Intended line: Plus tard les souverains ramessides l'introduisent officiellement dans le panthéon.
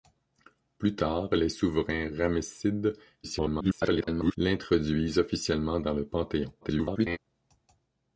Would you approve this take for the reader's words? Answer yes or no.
no